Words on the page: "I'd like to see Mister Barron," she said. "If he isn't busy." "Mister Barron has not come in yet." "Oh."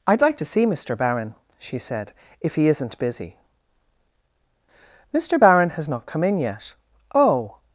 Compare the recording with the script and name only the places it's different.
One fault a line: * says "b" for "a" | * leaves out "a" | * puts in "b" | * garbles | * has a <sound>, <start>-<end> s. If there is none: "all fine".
all fine